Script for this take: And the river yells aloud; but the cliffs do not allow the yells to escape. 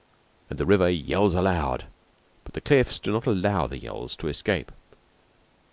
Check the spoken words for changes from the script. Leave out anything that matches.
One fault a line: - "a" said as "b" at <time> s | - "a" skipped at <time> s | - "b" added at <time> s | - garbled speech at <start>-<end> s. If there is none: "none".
none